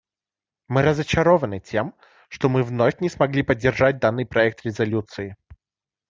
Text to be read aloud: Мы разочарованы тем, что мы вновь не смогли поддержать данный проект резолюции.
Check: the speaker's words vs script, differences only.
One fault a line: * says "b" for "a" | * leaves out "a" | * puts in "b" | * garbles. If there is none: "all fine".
all fine